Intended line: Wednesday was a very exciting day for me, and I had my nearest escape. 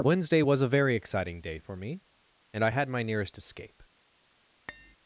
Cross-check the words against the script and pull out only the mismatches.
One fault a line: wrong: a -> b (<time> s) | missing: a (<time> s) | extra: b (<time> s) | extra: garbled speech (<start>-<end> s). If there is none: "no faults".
no faults